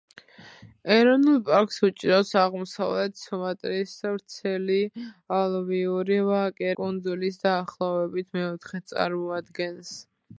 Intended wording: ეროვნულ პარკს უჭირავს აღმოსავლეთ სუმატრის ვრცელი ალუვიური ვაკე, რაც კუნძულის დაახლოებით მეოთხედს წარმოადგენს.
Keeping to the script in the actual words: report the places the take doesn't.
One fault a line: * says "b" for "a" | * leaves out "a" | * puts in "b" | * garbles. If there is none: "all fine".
* leaves out "რაც"